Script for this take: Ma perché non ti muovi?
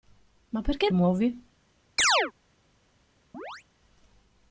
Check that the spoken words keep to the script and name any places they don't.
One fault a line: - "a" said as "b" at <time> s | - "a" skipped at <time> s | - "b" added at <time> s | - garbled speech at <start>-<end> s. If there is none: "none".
- "non ti" skipped at 0.9 s